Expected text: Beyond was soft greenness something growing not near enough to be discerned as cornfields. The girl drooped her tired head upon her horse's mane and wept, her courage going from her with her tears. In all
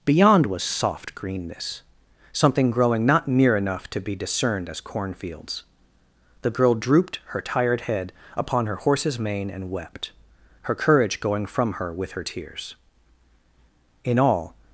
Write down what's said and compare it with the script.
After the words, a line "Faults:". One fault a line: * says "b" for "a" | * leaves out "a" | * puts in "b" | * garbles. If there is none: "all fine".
Beyond was soft greenness something growing not near enough to be discerned as cornfields. The girl drooped her tired head upon her horse's mane and wept, her courage going from her with her tears. In all
Faults:
all fine